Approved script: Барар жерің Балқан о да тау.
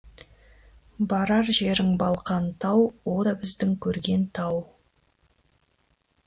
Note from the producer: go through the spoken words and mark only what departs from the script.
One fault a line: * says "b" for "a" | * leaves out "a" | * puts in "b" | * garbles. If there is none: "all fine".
* puts in "тау"
* puts in "біздің көрген"